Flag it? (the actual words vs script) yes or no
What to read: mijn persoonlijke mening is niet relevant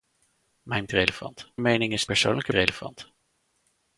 yes